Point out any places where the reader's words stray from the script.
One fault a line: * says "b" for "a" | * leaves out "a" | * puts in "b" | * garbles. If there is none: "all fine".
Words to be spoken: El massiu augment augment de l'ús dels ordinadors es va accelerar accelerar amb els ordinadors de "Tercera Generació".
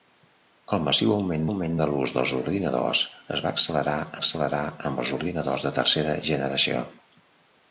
all fine